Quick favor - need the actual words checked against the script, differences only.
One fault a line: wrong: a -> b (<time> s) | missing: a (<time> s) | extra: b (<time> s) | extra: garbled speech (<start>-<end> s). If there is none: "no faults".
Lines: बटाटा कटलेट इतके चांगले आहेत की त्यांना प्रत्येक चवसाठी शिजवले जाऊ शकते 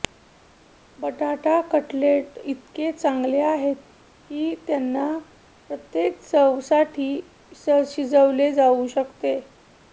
no faults